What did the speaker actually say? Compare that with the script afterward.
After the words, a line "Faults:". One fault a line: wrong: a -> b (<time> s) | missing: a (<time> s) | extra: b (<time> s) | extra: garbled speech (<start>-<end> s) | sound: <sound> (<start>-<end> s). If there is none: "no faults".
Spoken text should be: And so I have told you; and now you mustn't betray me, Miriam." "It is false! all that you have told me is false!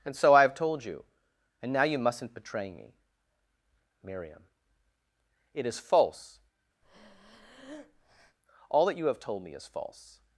And so I have told you; and now you mustn't betray me, Miriam." "It is false! all that you have told me is false!
Faults:
sound: breath (6.8-8.4 s)